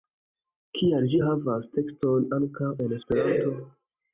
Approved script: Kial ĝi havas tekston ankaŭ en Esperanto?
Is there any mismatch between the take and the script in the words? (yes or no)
no